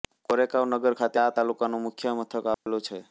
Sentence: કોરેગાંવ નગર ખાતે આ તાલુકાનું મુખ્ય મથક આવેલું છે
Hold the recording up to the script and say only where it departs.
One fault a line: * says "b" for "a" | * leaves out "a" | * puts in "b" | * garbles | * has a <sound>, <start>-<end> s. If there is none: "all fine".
* has a dropout, 2.5-2.7 s